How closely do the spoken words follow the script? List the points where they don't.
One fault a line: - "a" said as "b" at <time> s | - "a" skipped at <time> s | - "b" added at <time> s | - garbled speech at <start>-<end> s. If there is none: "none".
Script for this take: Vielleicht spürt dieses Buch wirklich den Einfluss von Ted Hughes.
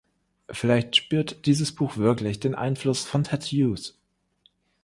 none